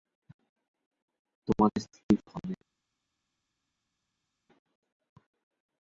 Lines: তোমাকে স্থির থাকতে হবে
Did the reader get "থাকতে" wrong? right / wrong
wrong